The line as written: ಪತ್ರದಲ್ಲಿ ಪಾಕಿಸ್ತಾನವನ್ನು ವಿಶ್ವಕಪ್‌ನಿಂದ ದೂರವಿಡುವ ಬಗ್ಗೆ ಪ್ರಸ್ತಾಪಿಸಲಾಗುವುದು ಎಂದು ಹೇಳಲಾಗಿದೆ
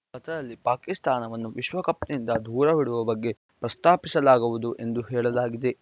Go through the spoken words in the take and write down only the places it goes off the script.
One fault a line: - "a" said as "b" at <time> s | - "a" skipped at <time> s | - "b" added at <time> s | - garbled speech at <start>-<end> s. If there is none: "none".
none